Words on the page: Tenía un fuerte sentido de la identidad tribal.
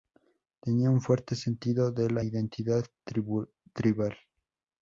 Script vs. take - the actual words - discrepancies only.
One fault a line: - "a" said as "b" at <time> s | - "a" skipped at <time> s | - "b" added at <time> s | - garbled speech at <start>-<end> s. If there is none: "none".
none